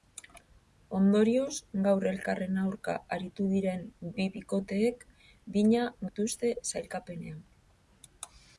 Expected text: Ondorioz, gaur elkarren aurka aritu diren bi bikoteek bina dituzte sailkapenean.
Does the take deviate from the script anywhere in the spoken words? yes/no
no